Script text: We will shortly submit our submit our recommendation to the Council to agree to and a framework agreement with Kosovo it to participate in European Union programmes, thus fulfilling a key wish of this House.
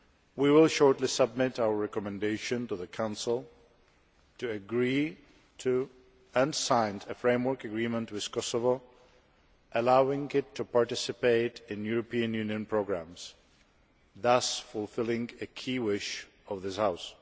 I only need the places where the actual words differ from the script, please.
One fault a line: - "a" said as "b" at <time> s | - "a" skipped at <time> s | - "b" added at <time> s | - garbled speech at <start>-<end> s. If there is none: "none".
- "submit our" skipped at 1.8 s
- "sign" added at 6.5 s
- "allowing" added at 9.7 s